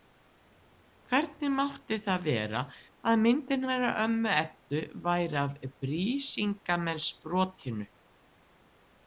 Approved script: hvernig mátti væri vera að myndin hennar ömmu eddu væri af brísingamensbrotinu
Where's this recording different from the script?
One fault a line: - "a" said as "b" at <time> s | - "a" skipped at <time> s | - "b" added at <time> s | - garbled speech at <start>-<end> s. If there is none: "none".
- "væri" said as "það" at 2.1 s